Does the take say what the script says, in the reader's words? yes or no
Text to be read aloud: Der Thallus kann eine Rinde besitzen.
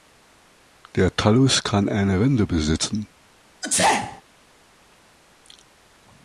yes